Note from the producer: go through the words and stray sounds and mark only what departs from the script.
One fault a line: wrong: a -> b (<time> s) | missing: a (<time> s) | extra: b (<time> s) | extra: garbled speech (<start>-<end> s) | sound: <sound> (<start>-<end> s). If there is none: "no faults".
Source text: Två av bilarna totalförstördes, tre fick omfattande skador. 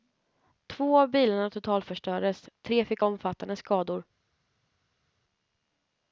no faults